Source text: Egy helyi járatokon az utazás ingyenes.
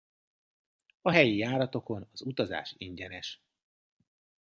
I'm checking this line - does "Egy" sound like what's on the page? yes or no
no